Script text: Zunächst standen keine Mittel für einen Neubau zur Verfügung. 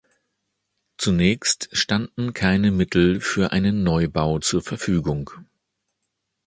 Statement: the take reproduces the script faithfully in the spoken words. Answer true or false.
true